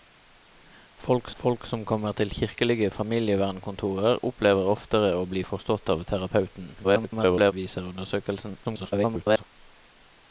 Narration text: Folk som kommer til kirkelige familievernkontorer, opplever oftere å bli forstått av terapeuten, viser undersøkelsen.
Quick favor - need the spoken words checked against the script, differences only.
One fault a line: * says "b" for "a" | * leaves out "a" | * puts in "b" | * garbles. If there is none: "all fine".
* puts in "folk"
* garbles
* garbles